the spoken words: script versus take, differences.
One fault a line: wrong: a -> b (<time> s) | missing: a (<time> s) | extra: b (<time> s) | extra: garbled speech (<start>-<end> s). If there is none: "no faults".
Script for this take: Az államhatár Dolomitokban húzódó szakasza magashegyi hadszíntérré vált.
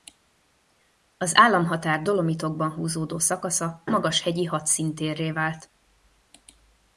no faults